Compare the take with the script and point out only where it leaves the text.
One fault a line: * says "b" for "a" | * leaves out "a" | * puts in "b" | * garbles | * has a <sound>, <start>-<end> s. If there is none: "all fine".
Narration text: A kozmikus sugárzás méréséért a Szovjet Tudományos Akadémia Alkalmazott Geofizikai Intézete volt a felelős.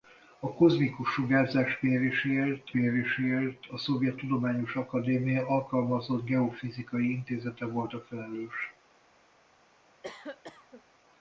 * puts in "méréséért"
* has a cough, 10.0-10.8 s